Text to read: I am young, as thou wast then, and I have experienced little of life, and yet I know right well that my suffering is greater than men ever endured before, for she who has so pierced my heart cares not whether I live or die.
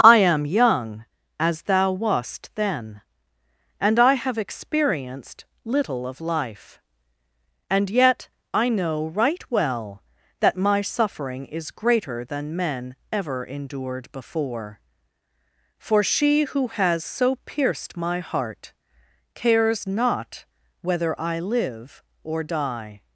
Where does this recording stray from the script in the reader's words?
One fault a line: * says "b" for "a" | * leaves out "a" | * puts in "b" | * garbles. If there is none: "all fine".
all fine